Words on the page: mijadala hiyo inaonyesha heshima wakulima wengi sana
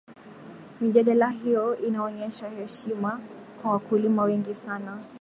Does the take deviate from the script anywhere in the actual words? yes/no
yes